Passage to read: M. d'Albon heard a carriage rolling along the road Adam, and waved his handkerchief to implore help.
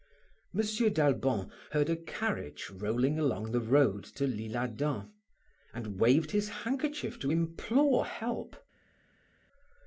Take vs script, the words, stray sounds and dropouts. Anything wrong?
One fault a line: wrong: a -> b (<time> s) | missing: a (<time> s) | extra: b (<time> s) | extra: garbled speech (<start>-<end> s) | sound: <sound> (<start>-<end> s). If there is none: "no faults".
extra: to l'Isle (4.0 s)